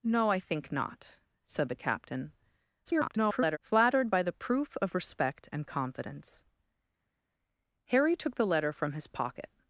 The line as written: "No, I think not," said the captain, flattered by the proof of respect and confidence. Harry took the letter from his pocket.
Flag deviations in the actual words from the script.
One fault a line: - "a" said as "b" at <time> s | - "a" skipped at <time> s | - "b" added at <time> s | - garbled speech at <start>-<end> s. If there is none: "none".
- garbled speech at 2.8-3.6 s